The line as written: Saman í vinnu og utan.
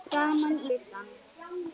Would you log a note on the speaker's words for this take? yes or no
yes